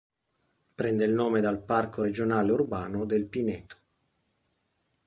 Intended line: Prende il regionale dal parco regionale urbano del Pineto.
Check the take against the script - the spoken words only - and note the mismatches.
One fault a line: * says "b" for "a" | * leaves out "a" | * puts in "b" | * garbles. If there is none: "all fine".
* says "nome" for "regionale"